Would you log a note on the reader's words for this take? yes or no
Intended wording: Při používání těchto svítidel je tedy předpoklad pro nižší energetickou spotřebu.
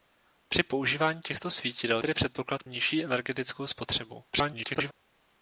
yes